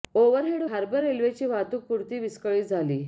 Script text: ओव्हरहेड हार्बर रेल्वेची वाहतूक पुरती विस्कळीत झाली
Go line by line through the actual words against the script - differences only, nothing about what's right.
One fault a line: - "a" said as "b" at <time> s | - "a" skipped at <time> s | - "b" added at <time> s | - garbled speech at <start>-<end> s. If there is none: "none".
none